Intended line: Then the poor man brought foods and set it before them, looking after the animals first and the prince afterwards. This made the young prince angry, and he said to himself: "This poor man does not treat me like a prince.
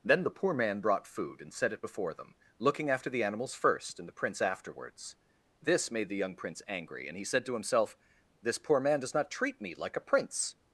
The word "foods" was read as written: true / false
false